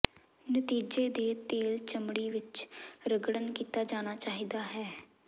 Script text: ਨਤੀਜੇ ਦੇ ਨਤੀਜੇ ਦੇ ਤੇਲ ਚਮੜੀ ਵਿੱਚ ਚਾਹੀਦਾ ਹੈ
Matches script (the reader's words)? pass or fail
fail